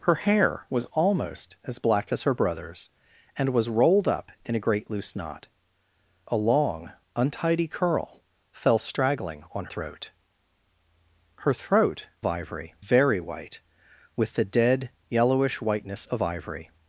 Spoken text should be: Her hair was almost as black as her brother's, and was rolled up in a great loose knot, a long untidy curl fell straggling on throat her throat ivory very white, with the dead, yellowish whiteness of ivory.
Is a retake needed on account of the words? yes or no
no